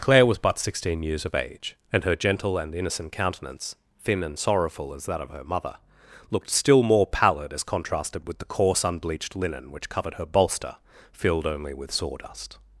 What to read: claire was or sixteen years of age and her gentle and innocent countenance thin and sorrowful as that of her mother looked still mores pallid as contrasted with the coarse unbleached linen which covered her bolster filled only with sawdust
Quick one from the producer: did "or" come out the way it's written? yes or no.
no